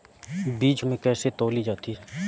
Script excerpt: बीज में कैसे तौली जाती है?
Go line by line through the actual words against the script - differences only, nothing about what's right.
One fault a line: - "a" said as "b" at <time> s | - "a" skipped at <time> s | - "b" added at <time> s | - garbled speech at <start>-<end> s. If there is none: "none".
none